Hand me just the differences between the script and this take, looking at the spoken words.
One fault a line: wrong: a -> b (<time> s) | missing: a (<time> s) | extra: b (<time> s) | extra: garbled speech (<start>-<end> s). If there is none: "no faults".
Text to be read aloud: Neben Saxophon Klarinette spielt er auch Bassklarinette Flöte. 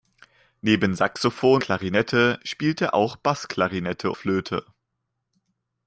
no faults